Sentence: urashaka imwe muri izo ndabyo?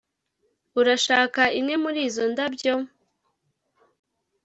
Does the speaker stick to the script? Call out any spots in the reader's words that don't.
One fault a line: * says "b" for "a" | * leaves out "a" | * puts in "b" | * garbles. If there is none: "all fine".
all fine